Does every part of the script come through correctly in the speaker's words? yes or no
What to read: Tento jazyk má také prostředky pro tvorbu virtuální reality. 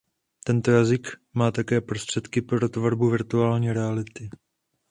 yes